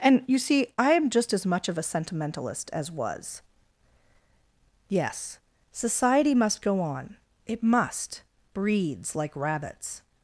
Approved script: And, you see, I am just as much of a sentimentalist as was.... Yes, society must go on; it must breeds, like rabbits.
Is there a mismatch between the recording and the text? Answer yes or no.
no